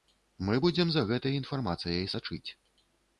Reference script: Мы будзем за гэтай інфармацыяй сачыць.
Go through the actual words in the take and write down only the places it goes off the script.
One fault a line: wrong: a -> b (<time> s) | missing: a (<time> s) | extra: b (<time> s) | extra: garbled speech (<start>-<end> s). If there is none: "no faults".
no faults